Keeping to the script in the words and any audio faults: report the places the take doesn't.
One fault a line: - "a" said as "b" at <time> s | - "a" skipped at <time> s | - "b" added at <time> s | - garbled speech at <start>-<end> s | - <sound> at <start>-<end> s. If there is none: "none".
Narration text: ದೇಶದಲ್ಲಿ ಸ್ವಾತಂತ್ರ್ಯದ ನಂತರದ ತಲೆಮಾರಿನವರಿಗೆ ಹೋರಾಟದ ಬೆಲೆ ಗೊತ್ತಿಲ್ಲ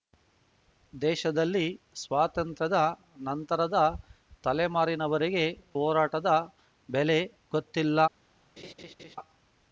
- laugh at 8.6-9.2 s